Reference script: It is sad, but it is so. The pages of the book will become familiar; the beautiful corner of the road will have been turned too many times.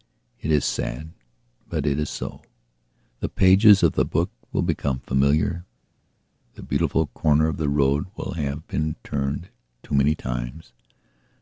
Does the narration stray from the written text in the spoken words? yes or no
no